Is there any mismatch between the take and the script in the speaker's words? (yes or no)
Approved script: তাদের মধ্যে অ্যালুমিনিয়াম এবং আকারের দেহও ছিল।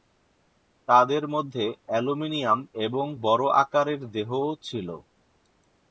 yes